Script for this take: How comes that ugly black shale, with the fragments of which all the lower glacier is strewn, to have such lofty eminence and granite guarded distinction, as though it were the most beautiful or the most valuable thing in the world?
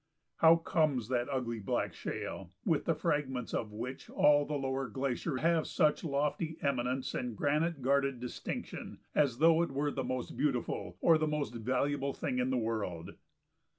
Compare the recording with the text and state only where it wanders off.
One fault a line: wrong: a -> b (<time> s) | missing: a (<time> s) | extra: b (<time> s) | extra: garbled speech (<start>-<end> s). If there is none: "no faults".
missing: is strewn to (5.4 s)